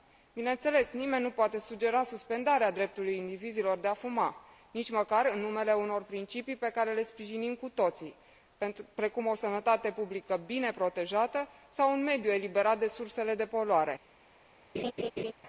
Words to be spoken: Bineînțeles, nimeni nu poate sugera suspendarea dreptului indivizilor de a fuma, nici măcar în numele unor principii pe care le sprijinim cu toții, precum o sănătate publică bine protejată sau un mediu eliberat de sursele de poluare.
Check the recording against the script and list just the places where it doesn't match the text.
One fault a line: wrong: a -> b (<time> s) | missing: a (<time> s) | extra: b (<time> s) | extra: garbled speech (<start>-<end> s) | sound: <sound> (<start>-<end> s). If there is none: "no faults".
sound: laugh (14.7-15.3 s)